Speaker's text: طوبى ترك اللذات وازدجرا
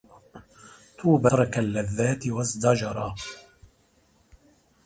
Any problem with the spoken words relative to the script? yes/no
no